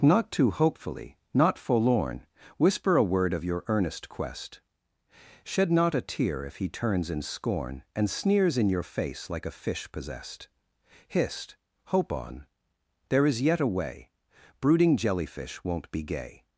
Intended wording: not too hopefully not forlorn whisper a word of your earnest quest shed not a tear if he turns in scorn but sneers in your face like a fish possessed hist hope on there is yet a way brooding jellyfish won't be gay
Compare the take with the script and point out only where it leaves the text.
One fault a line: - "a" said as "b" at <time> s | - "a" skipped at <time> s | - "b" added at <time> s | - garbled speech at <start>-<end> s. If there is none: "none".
- "but" said as "and" at 8.0 s